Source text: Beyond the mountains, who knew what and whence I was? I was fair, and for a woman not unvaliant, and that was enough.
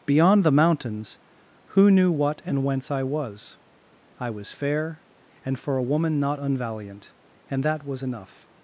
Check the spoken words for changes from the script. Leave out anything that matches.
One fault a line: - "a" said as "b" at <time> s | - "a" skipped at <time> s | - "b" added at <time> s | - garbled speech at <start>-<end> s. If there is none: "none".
none